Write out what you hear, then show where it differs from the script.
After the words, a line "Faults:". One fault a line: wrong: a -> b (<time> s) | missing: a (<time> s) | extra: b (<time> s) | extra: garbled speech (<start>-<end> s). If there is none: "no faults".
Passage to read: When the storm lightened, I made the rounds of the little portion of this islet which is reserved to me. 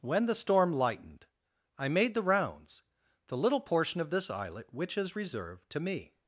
When the storm lightened, I made the rounds the little portion of this islet which is reserved to me.
Faults:
missing: of (2.8 s)